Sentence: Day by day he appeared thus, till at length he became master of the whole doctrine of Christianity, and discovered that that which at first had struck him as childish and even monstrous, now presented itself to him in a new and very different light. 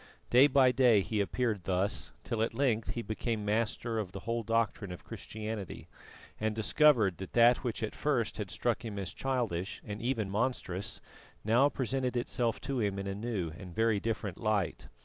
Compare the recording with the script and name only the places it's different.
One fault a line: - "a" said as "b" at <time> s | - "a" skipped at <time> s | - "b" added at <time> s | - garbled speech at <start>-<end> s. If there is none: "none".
none